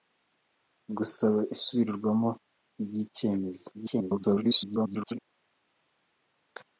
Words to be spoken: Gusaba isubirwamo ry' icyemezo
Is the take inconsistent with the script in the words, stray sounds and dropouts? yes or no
yes